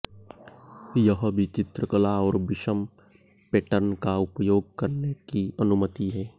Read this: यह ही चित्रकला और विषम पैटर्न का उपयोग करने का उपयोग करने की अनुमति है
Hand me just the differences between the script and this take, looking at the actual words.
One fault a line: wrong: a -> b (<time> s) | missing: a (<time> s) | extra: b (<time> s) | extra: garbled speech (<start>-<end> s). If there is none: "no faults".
wrong: ही -> भी (1.3 s)
missing: का उपयोग करने (5.1 s)